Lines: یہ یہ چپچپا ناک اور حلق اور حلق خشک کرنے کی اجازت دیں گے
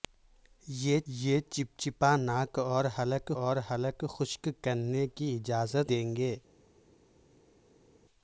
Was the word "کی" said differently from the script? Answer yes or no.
no